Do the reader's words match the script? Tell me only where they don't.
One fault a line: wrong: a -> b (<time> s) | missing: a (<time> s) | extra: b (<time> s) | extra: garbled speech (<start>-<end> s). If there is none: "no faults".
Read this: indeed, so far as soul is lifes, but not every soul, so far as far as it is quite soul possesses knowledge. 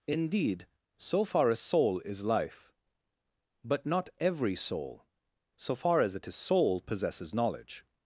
wrong: lifes -> life (2.2 s)
missing: far as (6.2 s)
missing: quite (6.3 s)